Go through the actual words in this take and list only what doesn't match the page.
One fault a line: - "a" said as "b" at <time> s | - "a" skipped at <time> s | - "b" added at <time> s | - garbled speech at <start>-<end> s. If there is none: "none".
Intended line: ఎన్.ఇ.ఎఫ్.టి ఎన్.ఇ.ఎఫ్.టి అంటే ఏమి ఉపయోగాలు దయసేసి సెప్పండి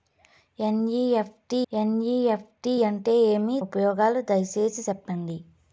none